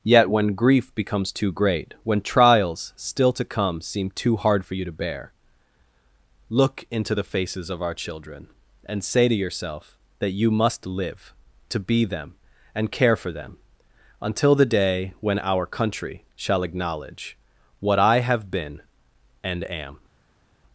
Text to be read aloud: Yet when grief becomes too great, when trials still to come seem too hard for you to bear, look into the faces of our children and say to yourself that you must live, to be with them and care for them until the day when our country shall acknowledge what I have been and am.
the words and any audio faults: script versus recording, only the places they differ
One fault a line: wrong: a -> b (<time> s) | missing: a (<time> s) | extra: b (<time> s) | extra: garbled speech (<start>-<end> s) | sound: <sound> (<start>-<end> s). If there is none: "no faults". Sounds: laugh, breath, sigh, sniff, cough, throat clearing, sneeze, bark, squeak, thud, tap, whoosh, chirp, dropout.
missing: with (12.0 s)